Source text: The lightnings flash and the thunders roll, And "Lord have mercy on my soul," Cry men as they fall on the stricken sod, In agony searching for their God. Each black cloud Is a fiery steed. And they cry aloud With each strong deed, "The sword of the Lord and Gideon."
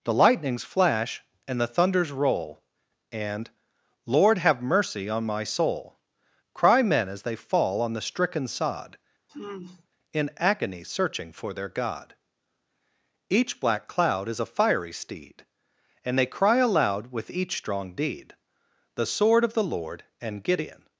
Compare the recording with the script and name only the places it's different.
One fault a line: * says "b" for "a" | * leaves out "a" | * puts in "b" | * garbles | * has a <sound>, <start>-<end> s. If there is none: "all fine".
* has a sigh, 9.3-9.9 s